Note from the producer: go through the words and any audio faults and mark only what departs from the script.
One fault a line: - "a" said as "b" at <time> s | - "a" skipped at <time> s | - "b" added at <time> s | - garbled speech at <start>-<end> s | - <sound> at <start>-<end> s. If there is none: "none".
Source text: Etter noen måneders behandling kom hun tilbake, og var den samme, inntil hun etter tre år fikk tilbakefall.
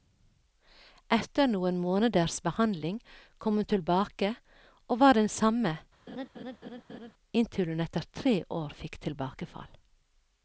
- laugh at 6.1-7.1 s